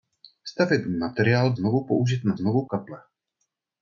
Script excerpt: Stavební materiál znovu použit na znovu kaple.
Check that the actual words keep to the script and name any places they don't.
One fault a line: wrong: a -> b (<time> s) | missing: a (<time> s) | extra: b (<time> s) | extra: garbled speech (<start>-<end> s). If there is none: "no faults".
no faults